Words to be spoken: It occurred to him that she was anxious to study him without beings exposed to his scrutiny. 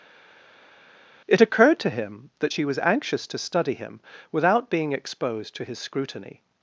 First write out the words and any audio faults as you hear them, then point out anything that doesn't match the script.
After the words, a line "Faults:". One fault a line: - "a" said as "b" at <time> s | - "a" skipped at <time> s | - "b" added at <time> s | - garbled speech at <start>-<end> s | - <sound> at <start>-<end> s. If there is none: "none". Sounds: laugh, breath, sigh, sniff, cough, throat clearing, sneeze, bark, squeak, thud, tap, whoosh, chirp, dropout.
It occurred to him that she was anxious to study him without being exposed to his scrutiny.
Faults:
- "beings" said as "being" at 4.7 s